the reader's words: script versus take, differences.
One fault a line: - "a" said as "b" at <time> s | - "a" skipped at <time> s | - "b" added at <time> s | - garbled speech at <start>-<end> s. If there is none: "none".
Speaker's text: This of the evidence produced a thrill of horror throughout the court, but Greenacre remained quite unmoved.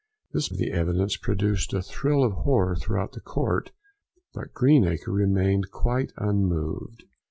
none